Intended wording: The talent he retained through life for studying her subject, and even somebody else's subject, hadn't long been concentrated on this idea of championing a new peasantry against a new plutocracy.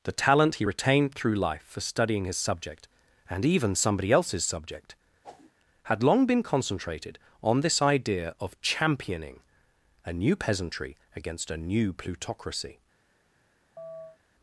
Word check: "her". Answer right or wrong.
wrong